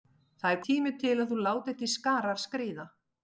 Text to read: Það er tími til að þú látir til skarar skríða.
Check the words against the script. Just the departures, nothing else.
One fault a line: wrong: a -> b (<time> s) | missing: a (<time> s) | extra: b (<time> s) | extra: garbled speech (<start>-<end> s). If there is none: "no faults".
no faults